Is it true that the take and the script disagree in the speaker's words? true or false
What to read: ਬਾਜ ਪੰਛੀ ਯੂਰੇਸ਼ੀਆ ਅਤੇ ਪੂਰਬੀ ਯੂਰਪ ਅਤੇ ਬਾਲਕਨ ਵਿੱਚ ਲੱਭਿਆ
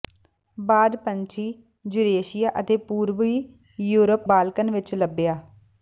true